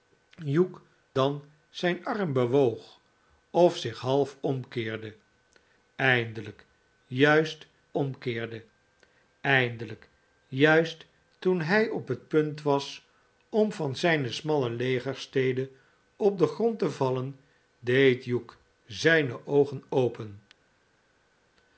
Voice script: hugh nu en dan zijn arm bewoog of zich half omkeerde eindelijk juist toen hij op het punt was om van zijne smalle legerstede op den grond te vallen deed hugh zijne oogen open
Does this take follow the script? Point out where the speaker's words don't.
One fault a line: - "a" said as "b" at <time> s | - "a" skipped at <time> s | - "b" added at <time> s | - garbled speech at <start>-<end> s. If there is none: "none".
- "nu en" skipped at 0.8 s
- "omkeerde eindelijk juist" added at 7.9 s